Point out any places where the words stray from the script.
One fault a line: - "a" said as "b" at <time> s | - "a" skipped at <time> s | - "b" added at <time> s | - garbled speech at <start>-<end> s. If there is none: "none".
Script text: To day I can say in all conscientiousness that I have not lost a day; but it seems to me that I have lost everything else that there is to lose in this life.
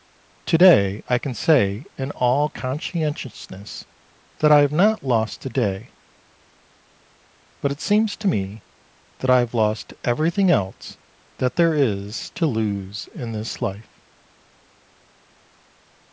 none